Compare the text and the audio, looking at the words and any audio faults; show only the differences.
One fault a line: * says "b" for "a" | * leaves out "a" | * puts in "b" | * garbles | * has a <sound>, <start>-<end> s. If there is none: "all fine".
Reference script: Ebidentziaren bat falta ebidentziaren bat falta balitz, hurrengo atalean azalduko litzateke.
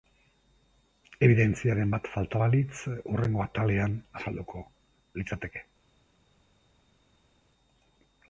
* leaves out "ebidentziaren bat falta"